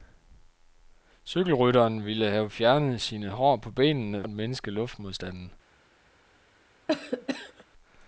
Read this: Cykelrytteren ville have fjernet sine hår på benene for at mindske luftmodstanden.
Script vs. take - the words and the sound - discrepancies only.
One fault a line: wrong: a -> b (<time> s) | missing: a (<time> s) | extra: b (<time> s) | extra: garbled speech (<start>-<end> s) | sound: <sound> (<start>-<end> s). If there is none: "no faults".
missing: for (4.2 s)
sound: cough (6.9-7.6 s)